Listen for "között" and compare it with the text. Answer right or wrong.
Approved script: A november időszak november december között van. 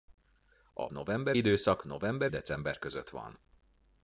right